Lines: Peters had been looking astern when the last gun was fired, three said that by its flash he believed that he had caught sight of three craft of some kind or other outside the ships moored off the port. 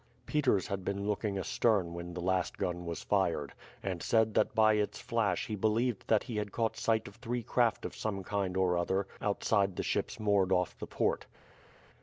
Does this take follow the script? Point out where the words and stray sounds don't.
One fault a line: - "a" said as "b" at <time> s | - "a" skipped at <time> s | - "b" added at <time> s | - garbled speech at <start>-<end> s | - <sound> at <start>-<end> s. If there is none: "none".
- "three" said as "and" at 3.8 s